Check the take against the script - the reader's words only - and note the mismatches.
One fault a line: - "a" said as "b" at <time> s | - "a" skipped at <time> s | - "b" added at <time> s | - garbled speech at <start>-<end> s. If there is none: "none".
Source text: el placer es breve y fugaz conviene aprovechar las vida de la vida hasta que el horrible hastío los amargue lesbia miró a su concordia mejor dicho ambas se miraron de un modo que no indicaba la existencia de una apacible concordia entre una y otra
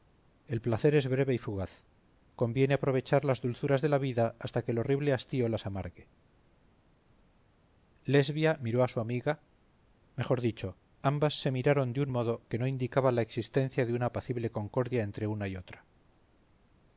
- "vida" said as "dulzuras" at 3.4 s
- "los" said as "las" at 5.5 s
- "concordia" said as "amiga" at 9.0 s